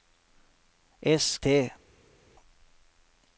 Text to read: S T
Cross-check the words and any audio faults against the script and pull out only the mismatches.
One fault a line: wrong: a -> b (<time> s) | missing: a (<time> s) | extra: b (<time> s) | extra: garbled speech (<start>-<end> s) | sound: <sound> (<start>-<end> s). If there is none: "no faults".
no faults